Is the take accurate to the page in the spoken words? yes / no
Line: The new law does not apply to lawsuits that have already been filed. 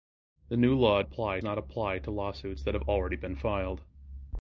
no